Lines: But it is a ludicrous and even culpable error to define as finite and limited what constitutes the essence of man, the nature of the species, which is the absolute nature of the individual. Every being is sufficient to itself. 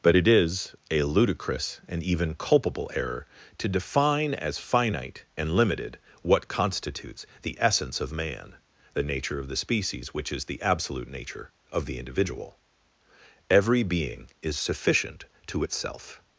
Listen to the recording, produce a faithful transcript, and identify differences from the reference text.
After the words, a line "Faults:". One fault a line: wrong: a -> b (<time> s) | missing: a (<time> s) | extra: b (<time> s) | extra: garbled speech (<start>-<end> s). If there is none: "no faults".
But it is a ludicrous and even culpable error to define as finite and limited what constitutes the essence of man, the nature of the species, which is the absolute nature of the individual. Every being is sufficient to itself.
Faults:
no faults